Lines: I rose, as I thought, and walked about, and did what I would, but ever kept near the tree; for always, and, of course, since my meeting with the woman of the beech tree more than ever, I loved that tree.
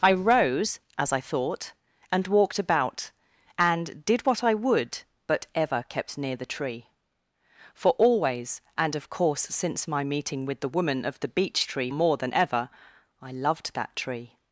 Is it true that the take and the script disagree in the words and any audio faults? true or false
false